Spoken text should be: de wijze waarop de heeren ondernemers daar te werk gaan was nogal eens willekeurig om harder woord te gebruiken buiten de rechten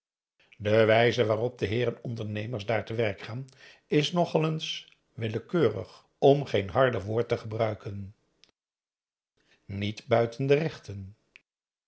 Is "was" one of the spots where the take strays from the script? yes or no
yes